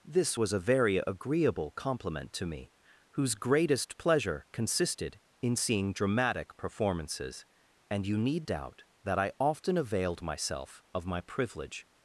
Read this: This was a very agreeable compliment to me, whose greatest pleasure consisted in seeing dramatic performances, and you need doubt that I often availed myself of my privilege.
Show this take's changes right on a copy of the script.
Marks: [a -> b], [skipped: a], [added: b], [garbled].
This was a very agreeable compliment to me, whose greatest pleasure consisted in seeing dramatic performances, and you need doubt that I often availed myself of my privilege.